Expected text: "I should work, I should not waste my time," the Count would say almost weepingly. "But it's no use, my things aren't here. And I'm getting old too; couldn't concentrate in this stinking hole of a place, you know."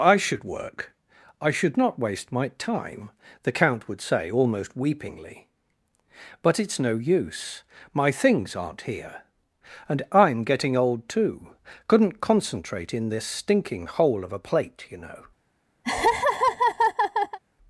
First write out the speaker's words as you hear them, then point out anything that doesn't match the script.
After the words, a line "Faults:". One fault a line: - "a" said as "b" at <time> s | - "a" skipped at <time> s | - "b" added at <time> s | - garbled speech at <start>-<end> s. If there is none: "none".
"I should work, I should not waste my time," the Count would say almost weepingly. "But it's no use, my things aren't here. And I'm getting old too; couldn't concentrate in this stinking hole of a plate, you know."
Faults:
- "place" said as "plate" at 14.4 s